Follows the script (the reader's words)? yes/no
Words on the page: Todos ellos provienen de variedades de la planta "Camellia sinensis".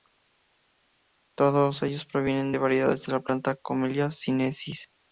yes